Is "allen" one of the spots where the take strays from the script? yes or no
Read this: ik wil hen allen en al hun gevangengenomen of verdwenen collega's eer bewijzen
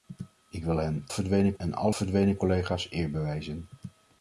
yes